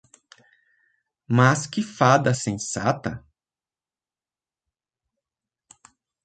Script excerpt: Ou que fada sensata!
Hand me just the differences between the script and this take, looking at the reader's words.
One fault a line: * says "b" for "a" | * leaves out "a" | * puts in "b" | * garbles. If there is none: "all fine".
* says "Mas" for "Ou"